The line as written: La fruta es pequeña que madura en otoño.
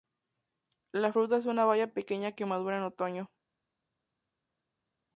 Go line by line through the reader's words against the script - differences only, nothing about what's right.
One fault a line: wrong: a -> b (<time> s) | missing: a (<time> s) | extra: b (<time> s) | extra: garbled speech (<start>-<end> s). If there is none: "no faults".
extra: una baya (1.5 s)